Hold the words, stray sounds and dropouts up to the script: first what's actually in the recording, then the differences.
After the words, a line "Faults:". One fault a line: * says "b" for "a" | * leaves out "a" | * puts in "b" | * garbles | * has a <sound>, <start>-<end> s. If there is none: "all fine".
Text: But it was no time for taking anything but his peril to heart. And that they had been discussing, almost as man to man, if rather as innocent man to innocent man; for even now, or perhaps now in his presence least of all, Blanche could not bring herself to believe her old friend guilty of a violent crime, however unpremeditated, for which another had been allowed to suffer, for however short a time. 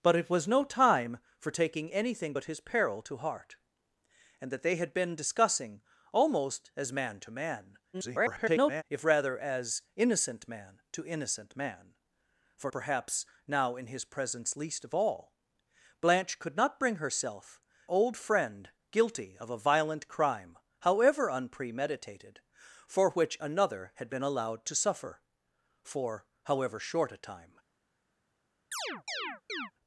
But it was no time for taking anything but his peril to heart. And that they had been discussing, almost as man to man, [garbled] if rather as innocent man to innocent man; for perhaps now in his presence least of all, Blanche could not bring herself old friend guilty of a violent crime, however unpremeditated, for which another had been allowed to suffer, for however short a time.
Faults:
* garbles
* leaves out "even now or"
* leaves out "to believe her"
* has a chirp, 28.7-29.7 s